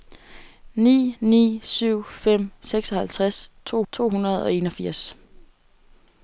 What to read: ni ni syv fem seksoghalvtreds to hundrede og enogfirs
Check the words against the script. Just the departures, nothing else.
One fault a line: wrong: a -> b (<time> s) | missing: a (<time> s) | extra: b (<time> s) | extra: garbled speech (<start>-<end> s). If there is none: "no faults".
extra: to (3.9 s)